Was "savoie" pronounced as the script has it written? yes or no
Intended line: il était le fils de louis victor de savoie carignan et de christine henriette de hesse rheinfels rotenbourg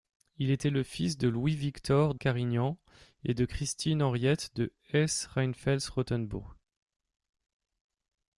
no